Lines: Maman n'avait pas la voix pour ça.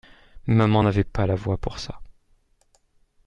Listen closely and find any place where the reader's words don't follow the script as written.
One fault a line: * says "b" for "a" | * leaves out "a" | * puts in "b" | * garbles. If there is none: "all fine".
all fine